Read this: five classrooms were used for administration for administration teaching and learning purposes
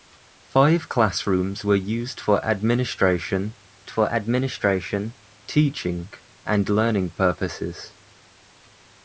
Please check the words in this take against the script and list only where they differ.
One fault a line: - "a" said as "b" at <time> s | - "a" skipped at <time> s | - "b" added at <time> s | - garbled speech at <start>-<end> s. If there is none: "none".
none